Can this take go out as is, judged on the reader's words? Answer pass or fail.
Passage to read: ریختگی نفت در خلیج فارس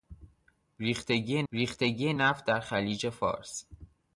fail